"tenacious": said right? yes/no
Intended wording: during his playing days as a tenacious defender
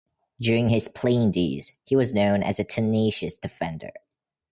yes